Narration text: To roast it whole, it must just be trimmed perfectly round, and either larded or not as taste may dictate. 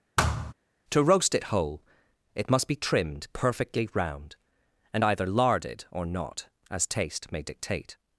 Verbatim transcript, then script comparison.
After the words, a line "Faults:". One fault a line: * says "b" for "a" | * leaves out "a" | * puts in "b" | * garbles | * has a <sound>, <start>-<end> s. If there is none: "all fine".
To roast it whole, it must be trimmed perfectly round, and either larded or not as taste may dictate.
Faults:
* has a thud, 0.2-0.5 s
* leaves out "just"